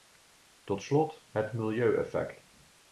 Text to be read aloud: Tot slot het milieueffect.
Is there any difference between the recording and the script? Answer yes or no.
no